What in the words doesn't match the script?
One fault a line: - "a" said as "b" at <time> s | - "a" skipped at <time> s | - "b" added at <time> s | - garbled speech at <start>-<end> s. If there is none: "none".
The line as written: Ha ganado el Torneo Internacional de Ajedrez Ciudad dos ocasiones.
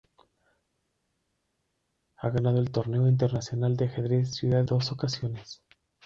none